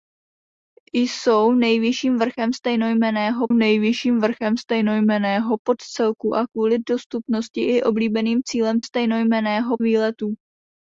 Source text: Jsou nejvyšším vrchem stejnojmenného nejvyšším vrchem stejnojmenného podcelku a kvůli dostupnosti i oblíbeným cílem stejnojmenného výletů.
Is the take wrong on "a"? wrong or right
right